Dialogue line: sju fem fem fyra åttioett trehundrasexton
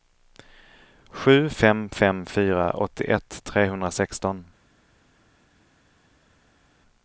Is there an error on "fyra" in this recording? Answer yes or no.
no